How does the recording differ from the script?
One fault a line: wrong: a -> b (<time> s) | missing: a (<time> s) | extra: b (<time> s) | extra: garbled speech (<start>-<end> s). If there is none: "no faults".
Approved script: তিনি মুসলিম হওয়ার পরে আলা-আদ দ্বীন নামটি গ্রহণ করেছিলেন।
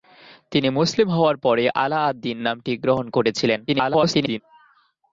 extra: garbled speech (3.7-4.4 s)